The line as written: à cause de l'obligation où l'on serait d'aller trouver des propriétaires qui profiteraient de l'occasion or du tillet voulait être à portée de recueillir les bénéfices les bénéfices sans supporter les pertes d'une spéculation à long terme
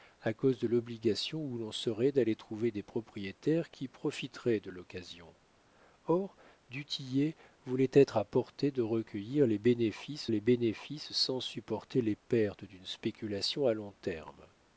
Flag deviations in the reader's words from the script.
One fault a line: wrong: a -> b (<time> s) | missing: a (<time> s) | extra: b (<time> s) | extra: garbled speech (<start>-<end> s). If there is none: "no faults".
no faults